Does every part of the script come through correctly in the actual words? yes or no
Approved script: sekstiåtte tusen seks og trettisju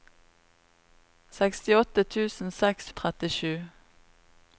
yes